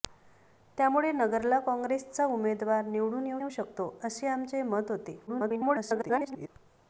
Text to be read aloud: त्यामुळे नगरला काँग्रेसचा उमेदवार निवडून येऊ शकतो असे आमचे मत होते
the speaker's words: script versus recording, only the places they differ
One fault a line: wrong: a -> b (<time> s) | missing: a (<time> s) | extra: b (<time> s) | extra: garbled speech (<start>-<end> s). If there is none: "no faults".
extra: येऊ (3.4 s)
extra: garbled speech (5.3-6.5 s)